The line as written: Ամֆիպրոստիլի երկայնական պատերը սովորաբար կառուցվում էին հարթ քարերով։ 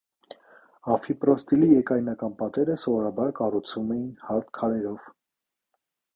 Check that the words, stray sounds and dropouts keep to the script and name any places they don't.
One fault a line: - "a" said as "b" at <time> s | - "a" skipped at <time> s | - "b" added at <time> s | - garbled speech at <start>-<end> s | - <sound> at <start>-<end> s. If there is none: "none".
none